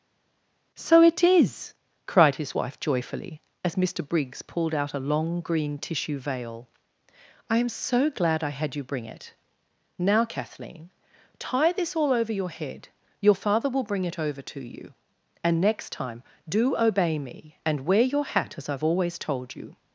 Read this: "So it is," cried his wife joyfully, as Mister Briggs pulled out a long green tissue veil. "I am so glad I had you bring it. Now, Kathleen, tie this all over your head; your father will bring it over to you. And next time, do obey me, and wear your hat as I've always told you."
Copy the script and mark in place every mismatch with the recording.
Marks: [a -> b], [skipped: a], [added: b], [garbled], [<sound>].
"So it is," cried his wife joyfully, as Mister Briggs pulled out a long green tissue veil. "I am so glad I had you bring it. Now, Kathleen, tie this all over your head; your father will bring it over to you. And next time, do obey me, and wear your hat as I've always told you."